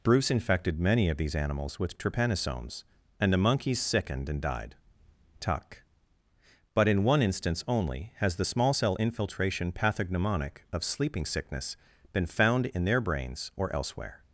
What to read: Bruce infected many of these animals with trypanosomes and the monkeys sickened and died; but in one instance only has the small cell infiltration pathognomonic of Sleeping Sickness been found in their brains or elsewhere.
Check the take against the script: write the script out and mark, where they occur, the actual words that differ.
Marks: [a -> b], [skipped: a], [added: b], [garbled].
Bruce infected many of these animals with trypanosomes and the monkeys sickened and died; [added: tuck] but in one instance only has the small cell infiltration pathognomonic of Sleeping Sickness been found in their brains or elsewhere.